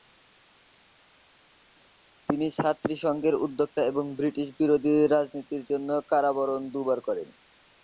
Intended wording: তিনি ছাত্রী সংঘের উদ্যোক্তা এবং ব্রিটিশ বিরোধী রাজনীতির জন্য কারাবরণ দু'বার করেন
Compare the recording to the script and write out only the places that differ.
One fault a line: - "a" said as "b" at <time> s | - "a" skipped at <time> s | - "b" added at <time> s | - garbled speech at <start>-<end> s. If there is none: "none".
none